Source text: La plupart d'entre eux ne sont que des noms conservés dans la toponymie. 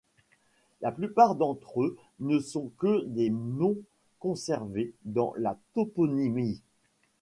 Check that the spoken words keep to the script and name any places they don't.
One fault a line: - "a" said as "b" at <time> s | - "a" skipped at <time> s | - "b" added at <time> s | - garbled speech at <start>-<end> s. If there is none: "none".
none